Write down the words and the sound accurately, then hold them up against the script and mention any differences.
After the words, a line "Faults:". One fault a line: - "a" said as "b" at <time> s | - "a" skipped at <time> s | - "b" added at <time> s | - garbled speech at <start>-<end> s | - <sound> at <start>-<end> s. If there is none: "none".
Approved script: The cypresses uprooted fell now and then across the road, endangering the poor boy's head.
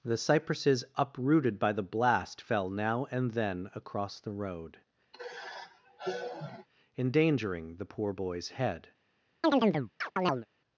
The cypresses uprooted by the blast fell now and then across the road, endangering the poor boy's head.
Faults:
- "by the blast" added at 1.6 s
- sigh at 5.1-6.7 s
- chirp at 9.4-10.5 s